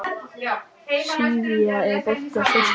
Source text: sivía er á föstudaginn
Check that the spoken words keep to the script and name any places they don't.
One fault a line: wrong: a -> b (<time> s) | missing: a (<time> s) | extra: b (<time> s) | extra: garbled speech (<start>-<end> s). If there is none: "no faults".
extra: bolti (2.0 s)